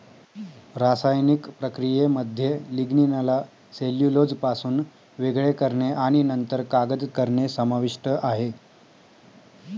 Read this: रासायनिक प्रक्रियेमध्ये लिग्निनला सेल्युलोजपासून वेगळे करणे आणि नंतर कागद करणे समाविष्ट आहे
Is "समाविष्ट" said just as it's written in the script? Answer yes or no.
yes